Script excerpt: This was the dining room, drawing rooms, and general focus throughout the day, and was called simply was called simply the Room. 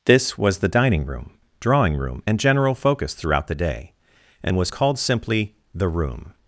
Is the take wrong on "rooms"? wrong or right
wrong